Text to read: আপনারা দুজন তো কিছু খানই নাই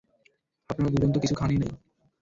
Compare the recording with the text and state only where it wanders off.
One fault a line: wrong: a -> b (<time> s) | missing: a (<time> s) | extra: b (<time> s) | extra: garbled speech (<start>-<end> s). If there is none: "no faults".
no faults